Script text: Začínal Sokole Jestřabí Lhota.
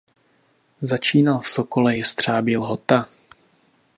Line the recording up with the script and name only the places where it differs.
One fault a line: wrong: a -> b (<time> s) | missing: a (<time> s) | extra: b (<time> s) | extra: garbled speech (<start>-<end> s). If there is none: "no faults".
extra: v (1.4 s)